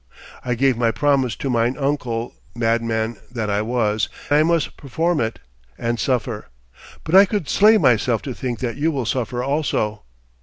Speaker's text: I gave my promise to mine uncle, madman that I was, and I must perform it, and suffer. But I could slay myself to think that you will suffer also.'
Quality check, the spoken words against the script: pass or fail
fail